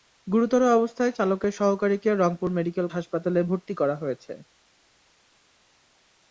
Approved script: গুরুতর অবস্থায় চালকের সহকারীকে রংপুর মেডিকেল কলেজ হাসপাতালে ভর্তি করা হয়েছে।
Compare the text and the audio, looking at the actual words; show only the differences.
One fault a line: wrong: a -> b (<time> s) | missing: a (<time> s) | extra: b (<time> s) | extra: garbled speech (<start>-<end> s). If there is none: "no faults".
missing: কলেজ (2.9 s)